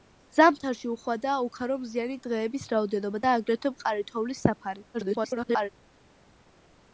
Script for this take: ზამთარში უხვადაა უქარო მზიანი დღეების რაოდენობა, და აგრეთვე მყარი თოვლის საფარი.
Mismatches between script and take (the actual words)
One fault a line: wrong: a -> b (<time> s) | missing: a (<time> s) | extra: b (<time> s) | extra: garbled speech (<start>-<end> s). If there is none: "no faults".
extra: garbled speech (4.9-5.7 s)